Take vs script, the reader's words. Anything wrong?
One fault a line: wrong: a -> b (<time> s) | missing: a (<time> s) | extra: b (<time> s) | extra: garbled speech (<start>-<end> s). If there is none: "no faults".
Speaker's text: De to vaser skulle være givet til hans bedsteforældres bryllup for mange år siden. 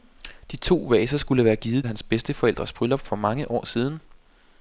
missing: til (1.9 s)